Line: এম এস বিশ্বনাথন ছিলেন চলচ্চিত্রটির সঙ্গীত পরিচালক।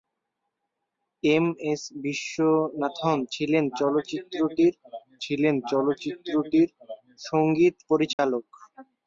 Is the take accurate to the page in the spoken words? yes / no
no